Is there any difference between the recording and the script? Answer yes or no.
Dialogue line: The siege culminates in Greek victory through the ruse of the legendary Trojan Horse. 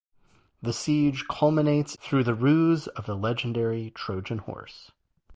yes